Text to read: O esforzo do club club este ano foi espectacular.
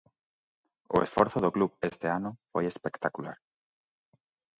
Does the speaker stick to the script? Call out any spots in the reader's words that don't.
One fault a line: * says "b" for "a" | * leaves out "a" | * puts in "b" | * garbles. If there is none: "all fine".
* leaves out "club"